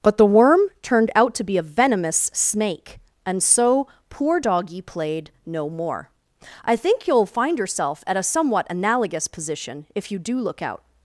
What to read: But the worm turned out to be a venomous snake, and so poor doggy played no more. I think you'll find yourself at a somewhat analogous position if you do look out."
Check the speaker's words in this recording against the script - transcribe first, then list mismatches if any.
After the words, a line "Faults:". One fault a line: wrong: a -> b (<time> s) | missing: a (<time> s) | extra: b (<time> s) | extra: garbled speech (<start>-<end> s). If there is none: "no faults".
But the worm turned out to be a venomous snake, and so poor doggy played no more. I think you'll find yourself at a somewhat analogous position if you do look out."
Faults:
no faults